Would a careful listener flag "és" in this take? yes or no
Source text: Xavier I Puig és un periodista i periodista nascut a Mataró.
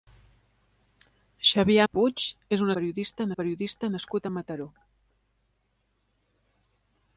no